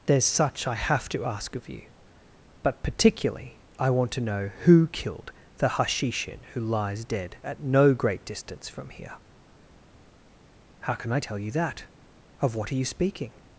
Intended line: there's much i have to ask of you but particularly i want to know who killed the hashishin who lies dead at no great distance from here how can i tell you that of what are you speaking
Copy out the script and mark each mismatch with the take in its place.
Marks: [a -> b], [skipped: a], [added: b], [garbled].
there's [much -> such] i have to ask of you but particularly i want to know who killed the hashishin who lies dead at no great distance from here how can i tell you that of what are you speaking